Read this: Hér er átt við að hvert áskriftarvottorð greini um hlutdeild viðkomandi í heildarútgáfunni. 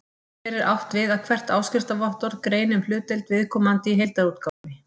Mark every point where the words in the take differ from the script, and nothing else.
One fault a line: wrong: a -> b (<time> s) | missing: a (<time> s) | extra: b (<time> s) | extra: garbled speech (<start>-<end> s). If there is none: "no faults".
no faults